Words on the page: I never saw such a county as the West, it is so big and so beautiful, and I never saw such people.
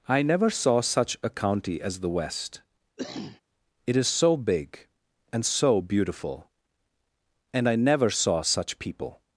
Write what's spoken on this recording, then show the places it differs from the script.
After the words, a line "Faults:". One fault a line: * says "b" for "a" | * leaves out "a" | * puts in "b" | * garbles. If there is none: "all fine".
I never saw such a county as the West, it is so big and so beautiful, and I never saw such people.
Faults:
all fine